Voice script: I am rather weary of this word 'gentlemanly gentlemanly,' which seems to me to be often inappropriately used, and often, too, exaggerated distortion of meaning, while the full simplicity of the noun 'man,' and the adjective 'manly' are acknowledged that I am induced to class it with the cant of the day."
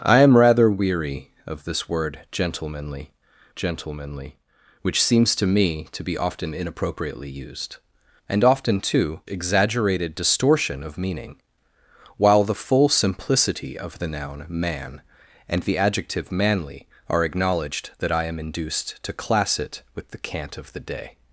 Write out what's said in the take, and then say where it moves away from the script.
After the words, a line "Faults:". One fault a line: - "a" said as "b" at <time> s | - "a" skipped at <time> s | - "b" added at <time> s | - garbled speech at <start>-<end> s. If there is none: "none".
I am rather weary of this word 'gentlemanly gentlemanly,' which seems to me to be often inappropriately used, and often, too, exaggerated distortion of meaning, while the full simplicity of the noun 'man,' and the adjective 'manly' are acknowledged that I am induced to class it with the cant of the day."
Faults:
none